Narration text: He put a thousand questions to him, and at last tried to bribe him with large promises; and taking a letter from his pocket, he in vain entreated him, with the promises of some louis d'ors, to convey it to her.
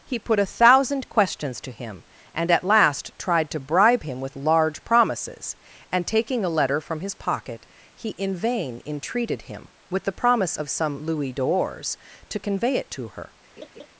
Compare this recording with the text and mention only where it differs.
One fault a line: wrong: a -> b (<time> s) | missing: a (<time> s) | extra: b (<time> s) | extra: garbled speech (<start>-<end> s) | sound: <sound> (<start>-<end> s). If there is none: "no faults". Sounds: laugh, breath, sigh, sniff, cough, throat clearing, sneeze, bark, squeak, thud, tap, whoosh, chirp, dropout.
wrong: promises -> promise (10.1 s)
sound: laugh (13.6-13.9 s)